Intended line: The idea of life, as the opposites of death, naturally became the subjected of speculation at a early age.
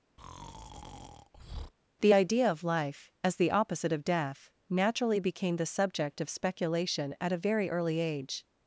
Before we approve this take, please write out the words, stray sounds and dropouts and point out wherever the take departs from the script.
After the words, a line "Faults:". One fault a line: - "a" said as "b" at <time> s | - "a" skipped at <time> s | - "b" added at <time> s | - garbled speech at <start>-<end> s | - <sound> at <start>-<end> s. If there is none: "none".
The idea of life, as the opposite of death, naturally became the subject of speculation at a very early age.
Faults:
- breath at 0.2-1.7 s
- "opposites" said as "opposite" at 3.5 s
- "subjected" said as "subject" at 5.7 s
- "very" added at 7.4 s